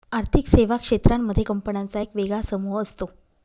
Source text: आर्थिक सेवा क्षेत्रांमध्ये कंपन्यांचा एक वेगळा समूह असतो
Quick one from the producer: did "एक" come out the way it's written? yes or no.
yes